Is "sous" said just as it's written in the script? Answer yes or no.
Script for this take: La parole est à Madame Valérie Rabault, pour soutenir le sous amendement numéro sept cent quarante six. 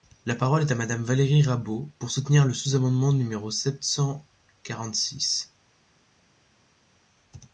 yes